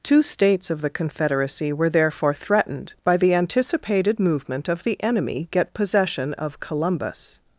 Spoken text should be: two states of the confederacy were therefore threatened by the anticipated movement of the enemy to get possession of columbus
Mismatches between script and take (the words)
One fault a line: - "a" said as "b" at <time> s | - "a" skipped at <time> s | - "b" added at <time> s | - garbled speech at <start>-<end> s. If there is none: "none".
- "to" skipped at 5.5 s